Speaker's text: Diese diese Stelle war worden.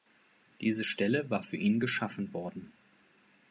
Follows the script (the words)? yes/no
no